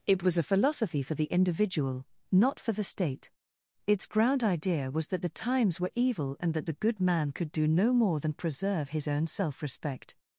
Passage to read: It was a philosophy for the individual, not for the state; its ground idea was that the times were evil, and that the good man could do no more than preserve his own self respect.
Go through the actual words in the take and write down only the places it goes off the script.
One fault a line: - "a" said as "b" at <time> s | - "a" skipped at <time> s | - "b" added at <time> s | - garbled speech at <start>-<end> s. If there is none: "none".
none